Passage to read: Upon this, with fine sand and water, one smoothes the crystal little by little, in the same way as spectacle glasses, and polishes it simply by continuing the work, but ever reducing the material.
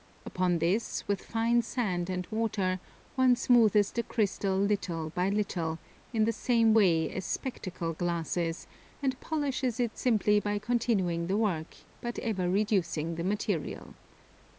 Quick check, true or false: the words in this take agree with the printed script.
true